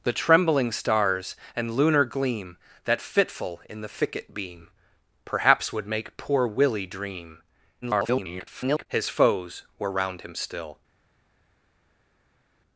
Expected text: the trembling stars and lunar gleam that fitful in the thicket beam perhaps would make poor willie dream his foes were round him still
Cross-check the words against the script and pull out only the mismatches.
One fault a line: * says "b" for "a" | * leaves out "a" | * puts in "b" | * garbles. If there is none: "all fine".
* garbles